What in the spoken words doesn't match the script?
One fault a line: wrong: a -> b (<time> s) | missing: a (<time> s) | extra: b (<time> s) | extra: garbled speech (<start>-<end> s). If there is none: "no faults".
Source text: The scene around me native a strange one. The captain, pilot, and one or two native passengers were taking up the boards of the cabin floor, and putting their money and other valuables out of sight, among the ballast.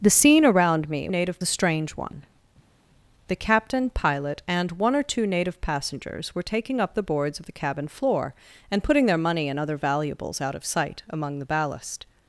no faults